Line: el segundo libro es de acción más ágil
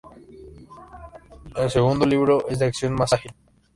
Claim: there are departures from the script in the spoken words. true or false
false